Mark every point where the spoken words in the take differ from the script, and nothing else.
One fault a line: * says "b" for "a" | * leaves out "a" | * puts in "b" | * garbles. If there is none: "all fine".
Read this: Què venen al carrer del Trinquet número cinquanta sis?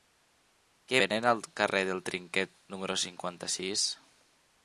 all fine